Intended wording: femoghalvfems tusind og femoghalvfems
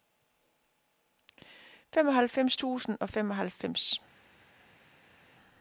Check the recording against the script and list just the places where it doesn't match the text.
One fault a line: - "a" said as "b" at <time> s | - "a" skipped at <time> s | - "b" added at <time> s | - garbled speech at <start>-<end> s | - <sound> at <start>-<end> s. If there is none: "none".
none